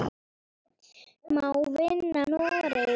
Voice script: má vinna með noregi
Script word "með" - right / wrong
wrong